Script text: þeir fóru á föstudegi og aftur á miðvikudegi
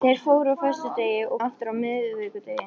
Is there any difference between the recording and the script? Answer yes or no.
no